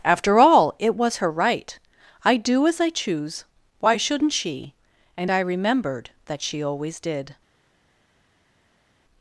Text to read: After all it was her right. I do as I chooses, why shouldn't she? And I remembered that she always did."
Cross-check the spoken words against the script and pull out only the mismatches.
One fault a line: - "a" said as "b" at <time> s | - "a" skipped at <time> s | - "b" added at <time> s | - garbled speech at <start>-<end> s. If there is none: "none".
- "chooses" said as "choose" at 2.9 s